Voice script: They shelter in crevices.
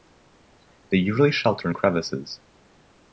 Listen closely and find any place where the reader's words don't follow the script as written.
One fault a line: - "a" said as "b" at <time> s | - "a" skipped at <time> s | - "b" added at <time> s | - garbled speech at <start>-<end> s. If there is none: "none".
- "usually" added at 1.0 s